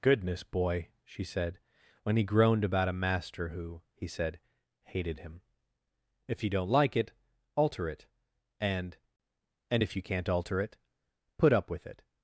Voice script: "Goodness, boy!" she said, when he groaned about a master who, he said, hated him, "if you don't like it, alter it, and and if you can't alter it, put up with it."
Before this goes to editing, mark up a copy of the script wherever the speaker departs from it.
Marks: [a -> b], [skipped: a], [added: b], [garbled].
"Goodness, boy!" she said, when he groaned about a master who, he said, hated him, "if you don't like it, alter it, and and if you can't alter it, put up with it."